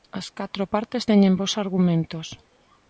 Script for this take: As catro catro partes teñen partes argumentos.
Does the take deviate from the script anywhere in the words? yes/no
yes